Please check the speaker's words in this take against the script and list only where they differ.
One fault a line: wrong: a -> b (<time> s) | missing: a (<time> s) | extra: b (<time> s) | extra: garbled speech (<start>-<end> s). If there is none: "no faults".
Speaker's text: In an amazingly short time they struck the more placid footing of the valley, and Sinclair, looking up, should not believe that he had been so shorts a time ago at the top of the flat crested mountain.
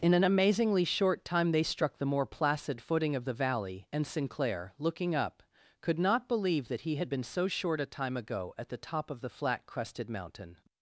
wrong: should -> could (5.8 s)
wrong: shorts -> short (7.5 s)